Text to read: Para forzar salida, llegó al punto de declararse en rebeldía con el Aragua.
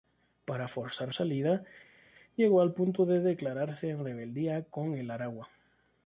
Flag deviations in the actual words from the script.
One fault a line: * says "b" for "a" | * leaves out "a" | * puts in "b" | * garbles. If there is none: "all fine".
all fine